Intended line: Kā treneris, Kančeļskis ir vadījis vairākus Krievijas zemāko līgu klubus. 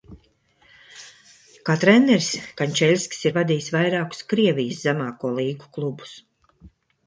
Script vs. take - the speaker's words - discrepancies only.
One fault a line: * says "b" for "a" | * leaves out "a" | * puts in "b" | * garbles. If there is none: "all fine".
all fine